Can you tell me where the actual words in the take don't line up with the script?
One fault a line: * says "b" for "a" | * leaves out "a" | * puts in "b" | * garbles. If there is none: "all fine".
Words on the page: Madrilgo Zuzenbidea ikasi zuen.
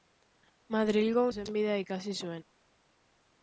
all fine